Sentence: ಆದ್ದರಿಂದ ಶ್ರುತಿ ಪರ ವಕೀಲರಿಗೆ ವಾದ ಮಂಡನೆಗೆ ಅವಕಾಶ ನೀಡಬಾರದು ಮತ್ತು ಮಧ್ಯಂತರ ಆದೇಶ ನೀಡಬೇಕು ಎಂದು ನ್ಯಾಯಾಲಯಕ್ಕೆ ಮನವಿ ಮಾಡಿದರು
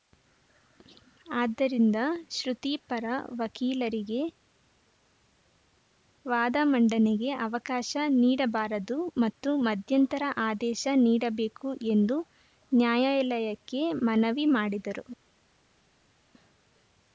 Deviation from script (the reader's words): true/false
false